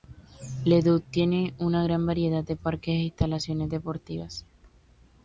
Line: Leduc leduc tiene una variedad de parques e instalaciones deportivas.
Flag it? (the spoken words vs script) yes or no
yes